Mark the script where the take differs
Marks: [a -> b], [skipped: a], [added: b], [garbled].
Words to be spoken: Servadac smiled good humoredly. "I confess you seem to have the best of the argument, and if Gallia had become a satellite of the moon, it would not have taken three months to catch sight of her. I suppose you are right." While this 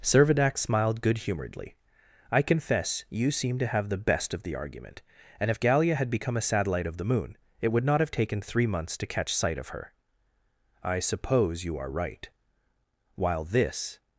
Servadac smiled good humoredly. "I confess you seem to have the best of the argument, and if Gallia had become a satellite of the moon, it would not have taken three months to catch sight of her. I suppose you are right." While this